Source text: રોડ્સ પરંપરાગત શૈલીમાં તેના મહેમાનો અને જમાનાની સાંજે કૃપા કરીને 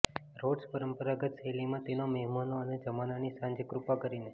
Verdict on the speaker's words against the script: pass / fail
pass